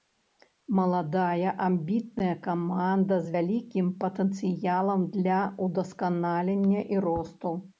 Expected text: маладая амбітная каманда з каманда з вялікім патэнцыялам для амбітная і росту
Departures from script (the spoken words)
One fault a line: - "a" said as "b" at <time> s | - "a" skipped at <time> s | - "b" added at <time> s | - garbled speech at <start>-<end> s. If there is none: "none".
- "каманда з" skipped at 3.4 s
- "амбітная" said as "ўдасканалення" at 5.7 s